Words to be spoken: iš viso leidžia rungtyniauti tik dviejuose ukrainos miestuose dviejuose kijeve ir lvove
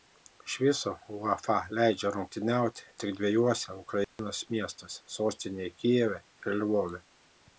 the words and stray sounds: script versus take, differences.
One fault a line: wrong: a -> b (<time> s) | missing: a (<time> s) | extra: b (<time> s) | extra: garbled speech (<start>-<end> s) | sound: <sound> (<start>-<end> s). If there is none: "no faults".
extra: uefa (1.2 s)
sound: dropout (4.0-4.2 s)
wrong: dviejuose -> sostinėje (5.2 s)